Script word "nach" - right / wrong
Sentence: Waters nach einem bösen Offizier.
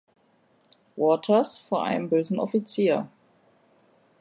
wrong